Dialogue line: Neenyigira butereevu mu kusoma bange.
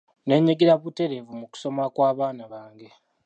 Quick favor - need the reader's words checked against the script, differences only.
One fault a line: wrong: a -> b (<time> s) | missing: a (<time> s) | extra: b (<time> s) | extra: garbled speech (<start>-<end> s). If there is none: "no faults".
extra: kw'abaana (1.9 s)